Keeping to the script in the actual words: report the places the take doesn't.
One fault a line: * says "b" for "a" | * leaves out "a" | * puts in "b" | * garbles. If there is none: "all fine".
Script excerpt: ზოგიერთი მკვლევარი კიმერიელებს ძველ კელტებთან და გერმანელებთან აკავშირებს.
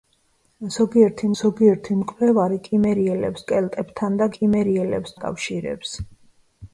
* puts in "ზოგიერთი"
* leaves out "ძველ"
* says "კიმერიელებს" for "გერმანელებთან"